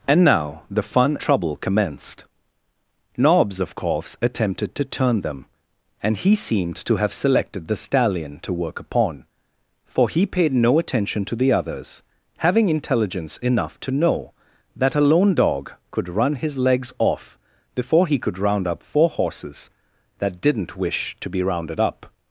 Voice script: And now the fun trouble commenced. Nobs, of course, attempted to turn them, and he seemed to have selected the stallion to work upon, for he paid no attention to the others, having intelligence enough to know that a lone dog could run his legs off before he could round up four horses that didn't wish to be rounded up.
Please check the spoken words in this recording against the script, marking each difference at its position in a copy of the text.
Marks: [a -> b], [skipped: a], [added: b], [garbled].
And now the fun trouble commenced. Nobs, of course, attempted to turn them, and he seemed to have selected the stallion to work upon, for he paid no attention to the others, having intelligence enough to know that a lone dog could run his legs off before he could round up four horses that didn't wish to be rounded up.